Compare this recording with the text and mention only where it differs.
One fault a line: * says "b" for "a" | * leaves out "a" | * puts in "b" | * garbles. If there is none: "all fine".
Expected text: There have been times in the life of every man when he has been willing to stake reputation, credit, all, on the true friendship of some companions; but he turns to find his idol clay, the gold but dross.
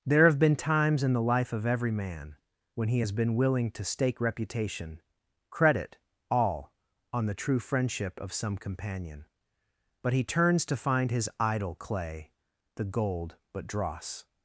* says "companion" for "companions"